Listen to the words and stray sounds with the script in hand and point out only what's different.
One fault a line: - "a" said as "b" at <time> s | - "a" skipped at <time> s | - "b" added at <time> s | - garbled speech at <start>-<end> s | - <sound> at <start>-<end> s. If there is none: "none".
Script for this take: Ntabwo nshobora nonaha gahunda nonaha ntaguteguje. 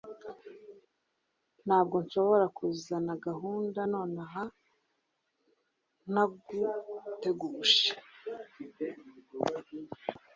- "nonaha" said as "kuzana" at 2.6 s